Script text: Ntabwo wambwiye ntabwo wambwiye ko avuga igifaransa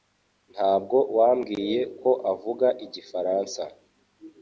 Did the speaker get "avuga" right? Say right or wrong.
right